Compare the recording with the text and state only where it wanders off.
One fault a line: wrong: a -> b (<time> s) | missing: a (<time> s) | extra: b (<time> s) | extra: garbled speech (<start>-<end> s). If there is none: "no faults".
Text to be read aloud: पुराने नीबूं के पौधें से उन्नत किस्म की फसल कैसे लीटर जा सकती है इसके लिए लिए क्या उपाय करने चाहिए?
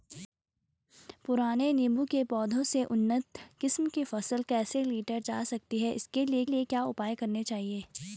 no faults